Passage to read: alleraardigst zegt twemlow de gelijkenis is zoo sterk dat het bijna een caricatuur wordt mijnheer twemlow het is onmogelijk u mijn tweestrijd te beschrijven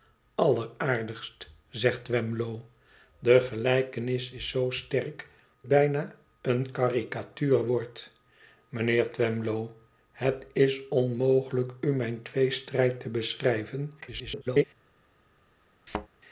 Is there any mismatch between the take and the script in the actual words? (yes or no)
yes